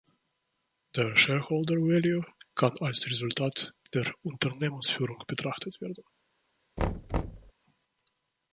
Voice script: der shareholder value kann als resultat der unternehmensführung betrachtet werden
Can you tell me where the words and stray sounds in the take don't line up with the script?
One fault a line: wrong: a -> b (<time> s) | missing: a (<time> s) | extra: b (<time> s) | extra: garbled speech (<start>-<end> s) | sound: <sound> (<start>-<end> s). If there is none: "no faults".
sound: thud (6.8-7.5 s)